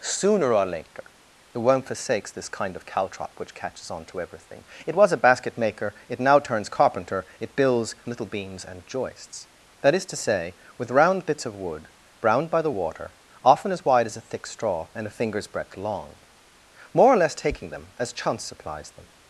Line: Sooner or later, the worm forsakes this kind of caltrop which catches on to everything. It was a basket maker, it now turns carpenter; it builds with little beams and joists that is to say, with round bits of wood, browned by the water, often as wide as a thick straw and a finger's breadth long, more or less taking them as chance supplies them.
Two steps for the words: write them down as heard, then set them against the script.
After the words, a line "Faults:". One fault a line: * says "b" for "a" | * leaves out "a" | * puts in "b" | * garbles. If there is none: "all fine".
Sooner or later, the worm forsakes this kind of caltrop which catches on to everything. It was a basket maker, it now turns carpenter; it builds little beams and joists that is to say, with round bits of wood, browned by the water, often as wide as a thick straw and a finger's breadth long, more or less taking them as chance supplies them.
Faults:
* leaves out "with"